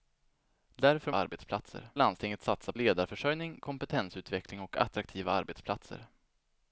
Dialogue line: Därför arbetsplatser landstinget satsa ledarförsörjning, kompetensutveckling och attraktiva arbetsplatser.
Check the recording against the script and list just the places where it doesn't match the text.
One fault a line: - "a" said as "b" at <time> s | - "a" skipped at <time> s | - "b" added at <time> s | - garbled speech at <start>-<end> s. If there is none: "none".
none